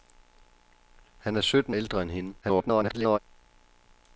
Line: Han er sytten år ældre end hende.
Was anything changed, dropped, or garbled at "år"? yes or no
yes